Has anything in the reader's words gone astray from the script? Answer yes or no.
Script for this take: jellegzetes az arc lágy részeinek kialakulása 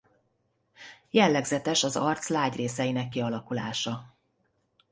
no